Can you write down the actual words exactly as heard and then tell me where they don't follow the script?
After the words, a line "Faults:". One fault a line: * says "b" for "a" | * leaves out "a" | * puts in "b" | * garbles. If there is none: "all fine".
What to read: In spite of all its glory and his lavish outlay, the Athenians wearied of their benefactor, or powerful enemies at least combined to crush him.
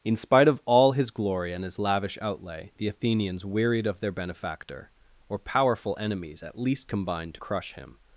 In spite of all his glory and his lavish outlay, the Athenians wearied of their benefactor, or powerful enemies at least combined to crush him.
Faults:
* says "his" for "its"